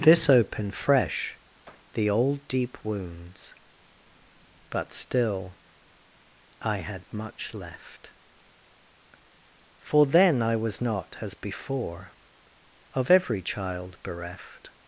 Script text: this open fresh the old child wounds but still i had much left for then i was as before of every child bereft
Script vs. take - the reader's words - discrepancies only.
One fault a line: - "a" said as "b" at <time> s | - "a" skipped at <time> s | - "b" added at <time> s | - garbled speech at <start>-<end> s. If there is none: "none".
- "open" said as "opened" at 0.3 s
- "child" said as "deep" at 2.5 s
- "not" added at 10.8 s